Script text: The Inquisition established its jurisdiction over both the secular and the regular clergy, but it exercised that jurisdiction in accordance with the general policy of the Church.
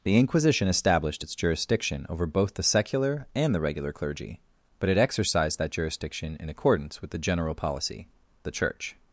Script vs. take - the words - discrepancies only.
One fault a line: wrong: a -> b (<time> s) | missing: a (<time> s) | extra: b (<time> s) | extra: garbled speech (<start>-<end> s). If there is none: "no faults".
missing: of (8.1 s)